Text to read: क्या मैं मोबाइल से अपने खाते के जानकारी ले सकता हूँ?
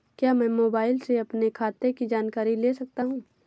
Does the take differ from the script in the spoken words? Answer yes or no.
yes